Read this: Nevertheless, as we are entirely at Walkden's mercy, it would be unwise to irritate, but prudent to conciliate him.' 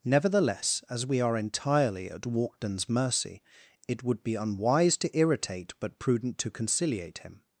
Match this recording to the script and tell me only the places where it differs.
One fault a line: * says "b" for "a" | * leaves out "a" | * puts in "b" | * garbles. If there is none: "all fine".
all fine